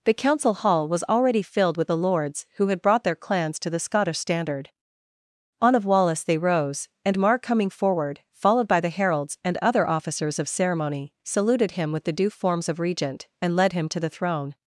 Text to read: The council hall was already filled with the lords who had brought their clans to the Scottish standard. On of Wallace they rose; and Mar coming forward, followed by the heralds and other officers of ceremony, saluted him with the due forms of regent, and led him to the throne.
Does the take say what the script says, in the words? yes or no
yes